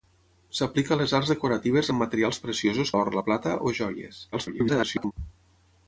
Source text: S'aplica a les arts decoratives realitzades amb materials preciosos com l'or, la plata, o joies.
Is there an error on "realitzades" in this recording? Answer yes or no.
yes